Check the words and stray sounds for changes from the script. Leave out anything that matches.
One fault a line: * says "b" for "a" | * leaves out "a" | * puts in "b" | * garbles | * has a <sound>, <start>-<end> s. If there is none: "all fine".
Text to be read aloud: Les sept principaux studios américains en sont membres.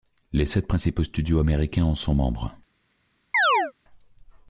* has a chirp, 3.3-3.7 s